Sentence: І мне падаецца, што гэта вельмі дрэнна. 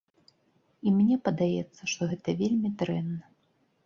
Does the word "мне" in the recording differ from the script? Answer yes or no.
no